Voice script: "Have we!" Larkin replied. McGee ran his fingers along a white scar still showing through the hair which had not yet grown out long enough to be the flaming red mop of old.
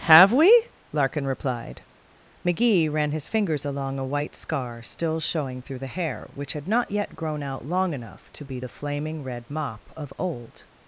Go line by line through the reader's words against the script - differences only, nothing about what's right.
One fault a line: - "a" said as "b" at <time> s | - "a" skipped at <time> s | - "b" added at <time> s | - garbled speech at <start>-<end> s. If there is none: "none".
none